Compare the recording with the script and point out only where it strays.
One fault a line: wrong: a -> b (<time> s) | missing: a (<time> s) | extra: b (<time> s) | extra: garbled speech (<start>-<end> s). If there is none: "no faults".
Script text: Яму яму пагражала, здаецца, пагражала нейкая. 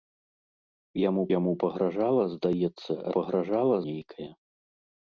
no faults